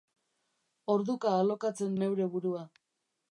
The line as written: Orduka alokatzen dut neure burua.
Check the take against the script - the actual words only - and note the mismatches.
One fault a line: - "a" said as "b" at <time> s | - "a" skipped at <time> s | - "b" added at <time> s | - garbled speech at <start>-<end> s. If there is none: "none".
- "dut" skipped at 2.0 s